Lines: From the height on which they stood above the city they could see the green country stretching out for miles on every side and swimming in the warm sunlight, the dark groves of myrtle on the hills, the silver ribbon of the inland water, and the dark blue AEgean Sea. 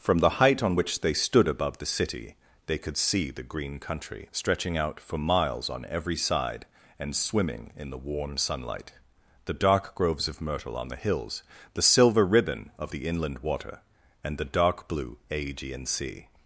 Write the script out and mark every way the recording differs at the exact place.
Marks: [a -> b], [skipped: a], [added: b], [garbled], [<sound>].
From the height on which they stood above the city they could see the green country stretching out for miles on every side and swimming in the warm sunlight, the dark groves of myrtle on the hills, the silver ribbon of the inland water, and the dark blue AEgean Sea.